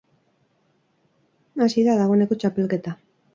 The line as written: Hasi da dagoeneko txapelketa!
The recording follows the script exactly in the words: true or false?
true